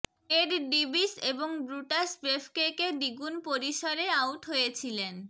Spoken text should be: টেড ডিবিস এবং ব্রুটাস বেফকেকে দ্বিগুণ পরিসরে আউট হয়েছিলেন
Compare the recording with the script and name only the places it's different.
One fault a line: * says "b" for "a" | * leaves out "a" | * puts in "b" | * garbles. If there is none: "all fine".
all fine